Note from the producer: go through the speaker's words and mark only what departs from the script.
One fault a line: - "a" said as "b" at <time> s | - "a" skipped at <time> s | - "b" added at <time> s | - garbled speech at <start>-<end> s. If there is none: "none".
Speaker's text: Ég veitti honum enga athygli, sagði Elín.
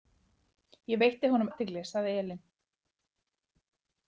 - "enga" skipped at 1.5 s